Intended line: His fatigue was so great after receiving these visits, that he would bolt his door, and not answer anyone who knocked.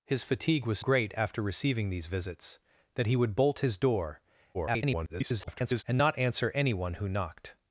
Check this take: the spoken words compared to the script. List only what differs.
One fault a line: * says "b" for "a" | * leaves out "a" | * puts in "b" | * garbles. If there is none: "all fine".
* leaves out "so"
* garbles